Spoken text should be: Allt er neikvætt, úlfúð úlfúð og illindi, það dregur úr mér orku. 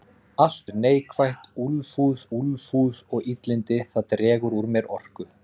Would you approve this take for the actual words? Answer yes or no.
yes